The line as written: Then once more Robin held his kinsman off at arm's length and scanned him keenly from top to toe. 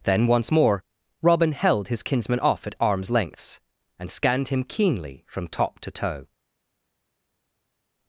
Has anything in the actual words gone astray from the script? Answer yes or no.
yes